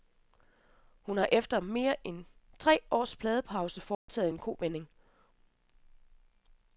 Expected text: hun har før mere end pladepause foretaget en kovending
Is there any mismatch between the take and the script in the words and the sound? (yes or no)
yes